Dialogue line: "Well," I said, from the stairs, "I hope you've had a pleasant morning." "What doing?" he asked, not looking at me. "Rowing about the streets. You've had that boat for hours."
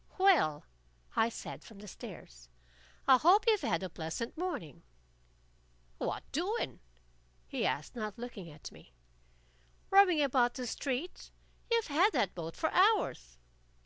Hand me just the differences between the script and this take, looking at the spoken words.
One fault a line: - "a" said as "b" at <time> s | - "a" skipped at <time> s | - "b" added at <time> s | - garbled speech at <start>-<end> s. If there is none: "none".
none